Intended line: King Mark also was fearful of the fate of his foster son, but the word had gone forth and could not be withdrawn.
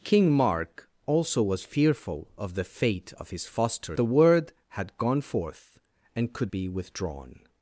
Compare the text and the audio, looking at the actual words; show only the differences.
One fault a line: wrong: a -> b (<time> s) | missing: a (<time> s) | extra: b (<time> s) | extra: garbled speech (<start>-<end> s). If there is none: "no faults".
missing: son but (4.0 s)
missing: not (6.5 s)